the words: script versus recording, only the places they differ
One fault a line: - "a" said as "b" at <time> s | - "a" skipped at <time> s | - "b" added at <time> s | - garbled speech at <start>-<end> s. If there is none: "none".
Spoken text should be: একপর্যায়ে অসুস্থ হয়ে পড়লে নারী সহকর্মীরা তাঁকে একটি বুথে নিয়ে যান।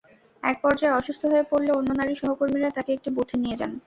- "অন্য" added at 1.7 s